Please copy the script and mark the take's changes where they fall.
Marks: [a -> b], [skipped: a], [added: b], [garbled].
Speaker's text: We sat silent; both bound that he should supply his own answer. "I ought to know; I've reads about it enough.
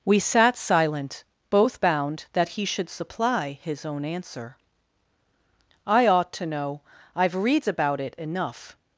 We sat silent; both bound that he should supply his own answer. "I ought to know; I've reads about it enough.